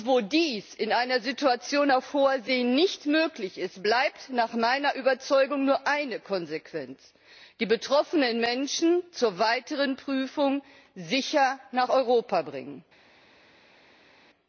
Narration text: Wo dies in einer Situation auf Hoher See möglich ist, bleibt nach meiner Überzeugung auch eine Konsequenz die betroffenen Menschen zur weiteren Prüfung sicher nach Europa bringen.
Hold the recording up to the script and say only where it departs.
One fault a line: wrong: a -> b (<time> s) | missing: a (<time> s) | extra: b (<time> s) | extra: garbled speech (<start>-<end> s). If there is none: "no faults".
extra: nicht (2.6 s)
wrong: auch -> nur (5.6 s)